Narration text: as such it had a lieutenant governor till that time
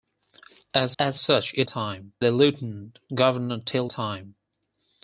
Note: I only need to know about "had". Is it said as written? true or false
false